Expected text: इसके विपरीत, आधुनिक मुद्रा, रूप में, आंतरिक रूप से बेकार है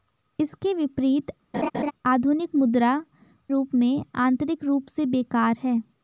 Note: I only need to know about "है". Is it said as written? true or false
true